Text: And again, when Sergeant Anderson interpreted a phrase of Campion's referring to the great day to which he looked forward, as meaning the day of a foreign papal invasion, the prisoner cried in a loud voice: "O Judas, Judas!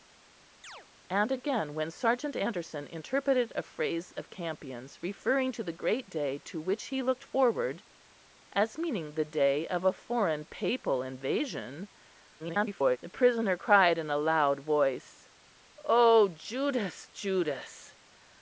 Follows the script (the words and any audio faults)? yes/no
no